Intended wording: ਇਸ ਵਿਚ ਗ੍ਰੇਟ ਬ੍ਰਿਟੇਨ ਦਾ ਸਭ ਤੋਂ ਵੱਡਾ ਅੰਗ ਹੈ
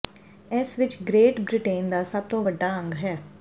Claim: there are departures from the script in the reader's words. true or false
false